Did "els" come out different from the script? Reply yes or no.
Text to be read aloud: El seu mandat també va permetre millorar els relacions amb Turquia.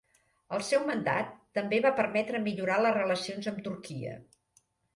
yes